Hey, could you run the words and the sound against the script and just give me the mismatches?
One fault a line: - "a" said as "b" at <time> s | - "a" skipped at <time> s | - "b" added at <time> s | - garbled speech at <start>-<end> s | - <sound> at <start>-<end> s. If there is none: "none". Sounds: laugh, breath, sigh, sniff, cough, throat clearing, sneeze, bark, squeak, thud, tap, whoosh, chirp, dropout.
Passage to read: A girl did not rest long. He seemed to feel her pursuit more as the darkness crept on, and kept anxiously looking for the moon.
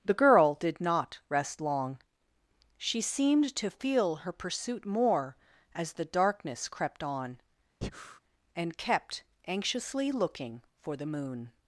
- "A" said as "The" at 0.0 s
- "He" said as "She" at 2.8 s
- breath at 7.8-8.2 s